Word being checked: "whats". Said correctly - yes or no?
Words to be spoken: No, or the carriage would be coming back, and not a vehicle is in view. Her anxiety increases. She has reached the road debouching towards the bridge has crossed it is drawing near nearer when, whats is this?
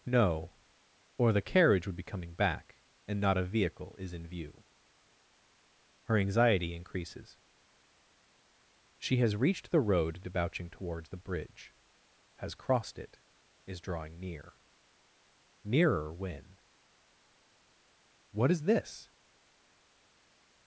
no